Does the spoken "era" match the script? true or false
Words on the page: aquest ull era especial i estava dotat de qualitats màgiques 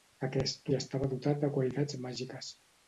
false